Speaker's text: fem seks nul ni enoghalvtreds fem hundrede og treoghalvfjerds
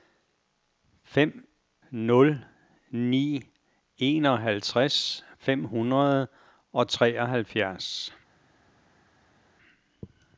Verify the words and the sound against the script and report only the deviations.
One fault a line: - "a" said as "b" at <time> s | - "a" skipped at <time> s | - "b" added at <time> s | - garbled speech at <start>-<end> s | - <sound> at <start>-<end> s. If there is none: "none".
- "seks" skipped at 1.5 s